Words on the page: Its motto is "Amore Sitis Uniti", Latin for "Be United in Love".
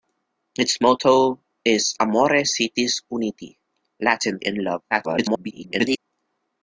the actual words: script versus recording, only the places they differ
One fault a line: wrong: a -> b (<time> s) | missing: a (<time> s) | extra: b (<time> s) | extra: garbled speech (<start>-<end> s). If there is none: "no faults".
missing: for Be United (4.4 s)
extra: garbled speech (4.9-6.0 s)